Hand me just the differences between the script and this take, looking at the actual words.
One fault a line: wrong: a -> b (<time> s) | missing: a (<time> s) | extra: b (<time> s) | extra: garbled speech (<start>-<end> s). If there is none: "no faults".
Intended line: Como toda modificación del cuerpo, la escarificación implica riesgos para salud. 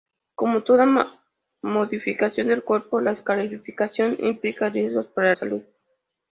no faults